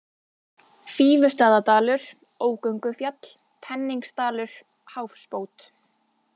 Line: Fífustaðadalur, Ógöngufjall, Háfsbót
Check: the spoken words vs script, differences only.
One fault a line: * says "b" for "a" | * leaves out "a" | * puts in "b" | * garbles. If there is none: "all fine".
* puts in "Penningsdalur"